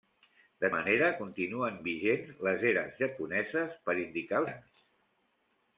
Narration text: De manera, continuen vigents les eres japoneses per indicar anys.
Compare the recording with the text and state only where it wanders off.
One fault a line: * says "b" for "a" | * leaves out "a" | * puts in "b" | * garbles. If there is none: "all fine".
all fine